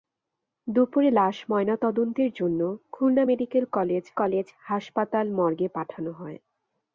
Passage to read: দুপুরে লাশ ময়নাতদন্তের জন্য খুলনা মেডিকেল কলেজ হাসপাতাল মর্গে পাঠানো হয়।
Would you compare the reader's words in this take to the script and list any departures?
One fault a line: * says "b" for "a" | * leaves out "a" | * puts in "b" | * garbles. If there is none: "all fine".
* puts in "কলেজ"